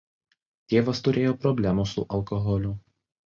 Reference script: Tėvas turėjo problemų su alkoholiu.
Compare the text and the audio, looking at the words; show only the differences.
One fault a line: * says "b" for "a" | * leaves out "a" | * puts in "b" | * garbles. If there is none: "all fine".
all fine